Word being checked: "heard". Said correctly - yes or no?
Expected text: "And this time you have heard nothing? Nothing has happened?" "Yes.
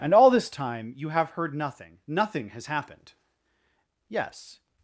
yes